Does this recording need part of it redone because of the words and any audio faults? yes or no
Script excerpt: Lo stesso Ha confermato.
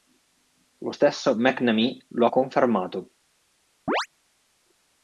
yes